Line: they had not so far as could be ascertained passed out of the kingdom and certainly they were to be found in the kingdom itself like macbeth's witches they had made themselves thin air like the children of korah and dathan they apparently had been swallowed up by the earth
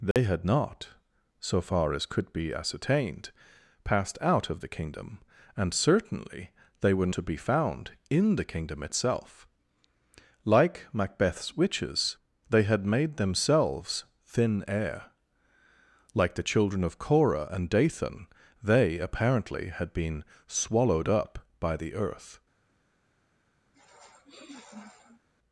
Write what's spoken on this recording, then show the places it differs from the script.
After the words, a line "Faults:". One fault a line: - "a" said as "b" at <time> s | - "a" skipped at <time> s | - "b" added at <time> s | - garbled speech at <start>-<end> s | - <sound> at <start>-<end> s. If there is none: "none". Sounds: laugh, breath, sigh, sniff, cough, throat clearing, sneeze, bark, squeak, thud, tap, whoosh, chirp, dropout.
they had not so far as could be ascertained passed out of the kingdom and certainly they were to be found in the kingdom itself like macbeth's witches they had made themselves thin air like the children of korah and dathan they apparently had been swallowed up by the earth
Faults:
- dropout at 0.1-0.2 s
- sniff at 23.7-25.3 s